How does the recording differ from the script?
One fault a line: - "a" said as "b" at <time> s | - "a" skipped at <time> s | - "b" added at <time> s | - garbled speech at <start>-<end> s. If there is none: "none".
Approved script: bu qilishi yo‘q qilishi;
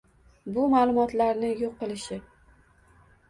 - "qilishi" said as "ma'lumotlarni" at 0.7 s